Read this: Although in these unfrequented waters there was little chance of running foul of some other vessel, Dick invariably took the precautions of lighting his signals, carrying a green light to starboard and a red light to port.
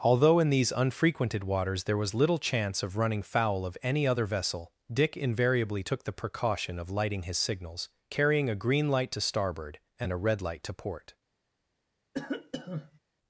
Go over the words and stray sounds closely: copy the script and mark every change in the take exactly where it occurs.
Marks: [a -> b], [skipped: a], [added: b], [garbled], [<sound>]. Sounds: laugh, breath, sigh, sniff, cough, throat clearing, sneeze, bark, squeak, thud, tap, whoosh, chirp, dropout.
Although in these unfrequented waters there was little chance of running foul of [some -> any] other vessel, Dick invariably took the [precautions -> precaution] of lighting his signals, carrying a green light to starboard and a red light to port. [cough]